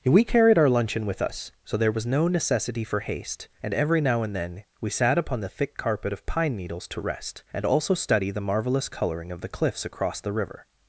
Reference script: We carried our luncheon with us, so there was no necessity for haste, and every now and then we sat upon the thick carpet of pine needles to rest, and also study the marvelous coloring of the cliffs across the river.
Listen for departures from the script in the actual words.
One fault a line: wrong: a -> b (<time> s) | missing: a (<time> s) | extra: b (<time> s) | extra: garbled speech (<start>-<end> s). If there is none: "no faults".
no faults